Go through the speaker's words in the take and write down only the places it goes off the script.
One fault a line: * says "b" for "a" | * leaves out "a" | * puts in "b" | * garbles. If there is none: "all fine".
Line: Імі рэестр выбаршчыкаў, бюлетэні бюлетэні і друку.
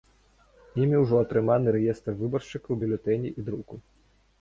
* puts in "ўжо атрыманы"
* leaves out "бюлетэні"